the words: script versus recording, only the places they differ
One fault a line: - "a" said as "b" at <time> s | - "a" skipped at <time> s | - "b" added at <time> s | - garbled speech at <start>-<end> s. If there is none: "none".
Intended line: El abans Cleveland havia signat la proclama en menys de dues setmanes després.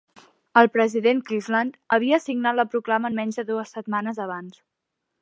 - "abans" said as "president" at 0.8 s
- "després" said as "abans" at 4.3 s